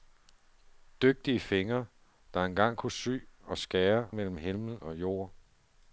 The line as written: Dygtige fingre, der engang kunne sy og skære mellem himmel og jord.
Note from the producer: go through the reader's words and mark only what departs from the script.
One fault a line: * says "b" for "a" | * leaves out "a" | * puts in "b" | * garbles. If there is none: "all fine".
all fine